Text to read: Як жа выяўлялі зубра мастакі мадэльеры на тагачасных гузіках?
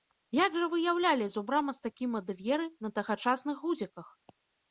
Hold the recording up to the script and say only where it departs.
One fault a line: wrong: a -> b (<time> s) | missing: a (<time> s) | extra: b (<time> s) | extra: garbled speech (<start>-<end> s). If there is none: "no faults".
no faults